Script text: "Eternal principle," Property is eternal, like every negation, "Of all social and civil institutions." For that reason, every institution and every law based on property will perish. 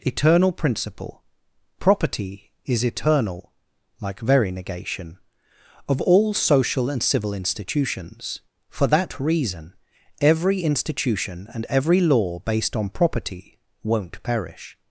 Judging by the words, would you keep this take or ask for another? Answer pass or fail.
fail